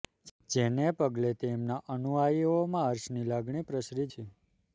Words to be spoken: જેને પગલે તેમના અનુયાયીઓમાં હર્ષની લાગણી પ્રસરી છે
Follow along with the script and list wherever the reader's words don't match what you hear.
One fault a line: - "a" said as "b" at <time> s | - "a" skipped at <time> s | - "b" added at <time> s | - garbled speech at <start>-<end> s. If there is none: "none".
none